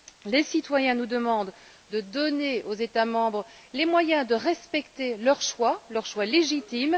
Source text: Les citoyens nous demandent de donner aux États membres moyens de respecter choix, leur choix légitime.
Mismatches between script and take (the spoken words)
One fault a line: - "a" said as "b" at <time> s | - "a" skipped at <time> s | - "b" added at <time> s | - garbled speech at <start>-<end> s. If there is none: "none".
- "les" added at 3.7 s
- "leur" added at 5.2 s